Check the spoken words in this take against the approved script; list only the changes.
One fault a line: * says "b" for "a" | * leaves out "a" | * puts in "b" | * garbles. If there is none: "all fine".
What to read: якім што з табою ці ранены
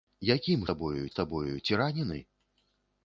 * says "табою" for "што"